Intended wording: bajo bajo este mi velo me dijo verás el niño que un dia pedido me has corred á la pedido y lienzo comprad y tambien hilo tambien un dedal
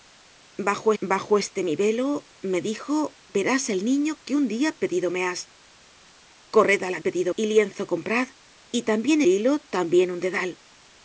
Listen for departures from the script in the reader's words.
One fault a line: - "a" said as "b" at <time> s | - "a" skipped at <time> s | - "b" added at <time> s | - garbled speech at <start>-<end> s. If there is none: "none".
none